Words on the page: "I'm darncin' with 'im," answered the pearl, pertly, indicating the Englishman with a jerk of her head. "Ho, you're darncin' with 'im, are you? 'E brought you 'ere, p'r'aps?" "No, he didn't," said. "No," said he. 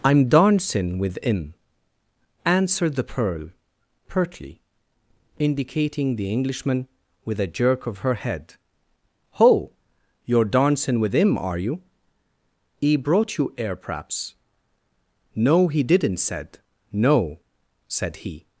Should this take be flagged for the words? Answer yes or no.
no